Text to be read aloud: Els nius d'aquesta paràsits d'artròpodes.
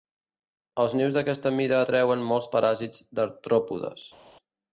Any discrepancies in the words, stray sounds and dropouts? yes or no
yes